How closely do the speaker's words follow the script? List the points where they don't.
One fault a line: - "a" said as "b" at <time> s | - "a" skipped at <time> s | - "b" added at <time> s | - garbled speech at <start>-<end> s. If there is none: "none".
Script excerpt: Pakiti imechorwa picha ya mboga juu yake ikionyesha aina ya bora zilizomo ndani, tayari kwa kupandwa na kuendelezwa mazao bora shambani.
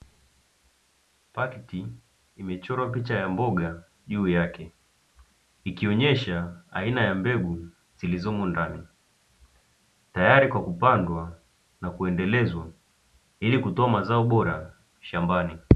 - "bora" said as "mbegu" at 7.2 s
- "ili kutoa" added at 13.4 s